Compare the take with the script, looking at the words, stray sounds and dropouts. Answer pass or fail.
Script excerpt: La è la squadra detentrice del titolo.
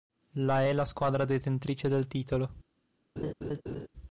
fail